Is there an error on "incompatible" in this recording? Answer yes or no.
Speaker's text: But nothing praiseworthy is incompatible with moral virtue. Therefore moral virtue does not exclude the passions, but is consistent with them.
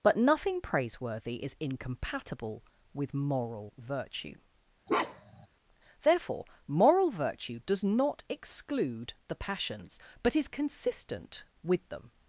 no